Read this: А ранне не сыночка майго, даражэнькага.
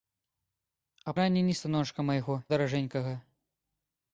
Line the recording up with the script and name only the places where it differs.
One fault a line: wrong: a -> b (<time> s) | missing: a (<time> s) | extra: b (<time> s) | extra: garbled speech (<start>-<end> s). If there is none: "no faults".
no faults